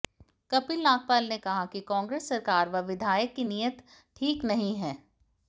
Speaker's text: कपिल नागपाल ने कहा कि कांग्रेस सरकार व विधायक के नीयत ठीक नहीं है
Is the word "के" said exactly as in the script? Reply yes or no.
no